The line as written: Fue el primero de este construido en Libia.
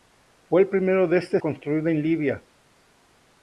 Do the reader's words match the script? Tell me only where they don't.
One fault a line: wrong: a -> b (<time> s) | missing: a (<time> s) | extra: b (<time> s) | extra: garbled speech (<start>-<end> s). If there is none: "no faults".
no faults